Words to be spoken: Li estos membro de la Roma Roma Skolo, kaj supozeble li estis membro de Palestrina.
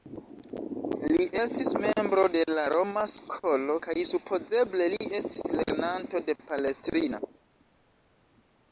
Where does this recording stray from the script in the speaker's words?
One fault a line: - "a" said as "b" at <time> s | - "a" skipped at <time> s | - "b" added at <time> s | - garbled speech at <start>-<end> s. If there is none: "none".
- "estos" said as "estis" at 1.4 s
- "Roma" skipped at 3.0 s
- "membro" said as "lernanto" at 5.6 s